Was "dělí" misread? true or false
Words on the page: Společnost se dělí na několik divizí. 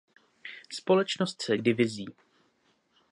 true